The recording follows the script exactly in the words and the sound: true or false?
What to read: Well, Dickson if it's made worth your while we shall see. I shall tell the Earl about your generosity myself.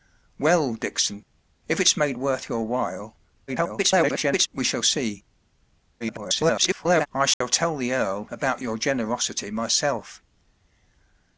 false